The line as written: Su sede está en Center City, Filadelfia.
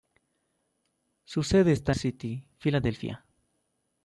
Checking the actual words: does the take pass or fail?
fail